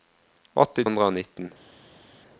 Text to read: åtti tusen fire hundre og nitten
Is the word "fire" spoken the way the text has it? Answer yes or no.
no